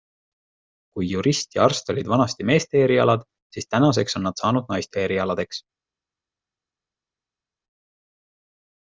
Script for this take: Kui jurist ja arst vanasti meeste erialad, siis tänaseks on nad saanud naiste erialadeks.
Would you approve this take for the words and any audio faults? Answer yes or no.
no